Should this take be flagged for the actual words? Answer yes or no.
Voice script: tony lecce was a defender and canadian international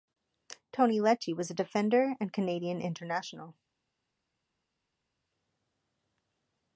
no